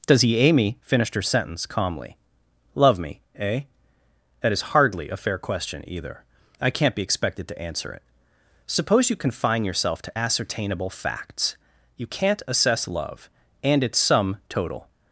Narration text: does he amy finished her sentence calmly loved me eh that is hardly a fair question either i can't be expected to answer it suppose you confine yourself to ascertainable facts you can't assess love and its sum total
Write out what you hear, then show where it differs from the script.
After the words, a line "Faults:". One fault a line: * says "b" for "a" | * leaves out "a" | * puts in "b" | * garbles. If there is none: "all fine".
does he amy finished her sentence calmly love me eh that is hardly a fair question either i can't be expected to answer it suppose you confine yourself to ascertainable facts you can't assess love and its sum total
Faults:
* says "love" for "loved"